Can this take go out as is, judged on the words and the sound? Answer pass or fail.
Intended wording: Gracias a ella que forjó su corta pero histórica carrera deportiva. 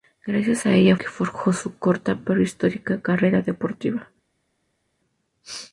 pass